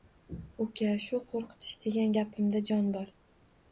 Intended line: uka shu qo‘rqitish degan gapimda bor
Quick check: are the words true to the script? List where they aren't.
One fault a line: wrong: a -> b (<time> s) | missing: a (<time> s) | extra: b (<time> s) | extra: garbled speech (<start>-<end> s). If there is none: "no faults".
extra: jon (2.7 s)